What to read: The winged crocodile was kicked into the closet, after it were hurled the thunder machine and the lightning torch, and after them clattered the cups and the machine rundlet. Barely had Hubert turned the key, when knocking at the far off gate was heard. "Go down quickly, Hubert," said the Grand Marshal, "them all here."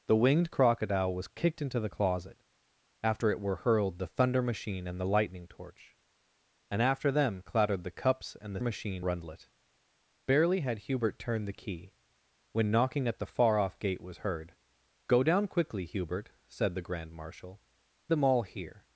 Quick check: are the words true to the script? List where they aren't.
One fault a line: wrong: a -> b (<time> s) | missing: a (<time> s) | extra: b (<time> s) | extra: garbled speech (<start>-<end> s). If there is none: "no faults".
no faults